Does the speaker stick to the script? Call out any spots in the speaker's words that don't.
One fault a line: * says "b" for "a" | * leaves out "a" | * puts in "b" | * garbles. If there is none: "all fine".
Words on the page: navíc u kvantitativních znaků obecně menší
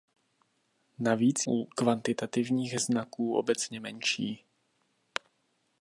all fine